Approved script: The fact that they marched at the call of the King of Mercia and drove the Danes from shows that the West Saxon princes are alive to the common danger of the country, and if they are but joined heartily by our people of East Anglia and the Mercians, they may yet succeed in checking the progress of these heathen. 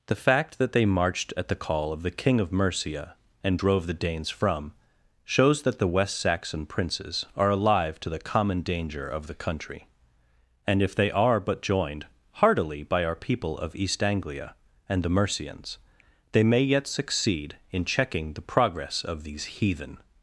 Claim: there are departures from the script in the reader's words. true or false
false